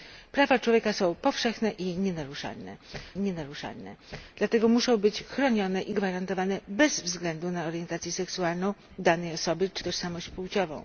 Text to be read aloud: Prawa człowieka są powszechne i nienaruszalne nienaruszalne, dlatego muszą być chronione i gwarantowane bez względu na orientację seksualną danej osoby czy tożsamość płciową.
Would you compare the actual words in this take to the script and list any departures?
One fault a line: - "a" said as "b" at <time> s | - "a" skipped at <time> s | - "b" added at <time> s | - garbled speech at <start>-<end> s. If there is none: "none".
none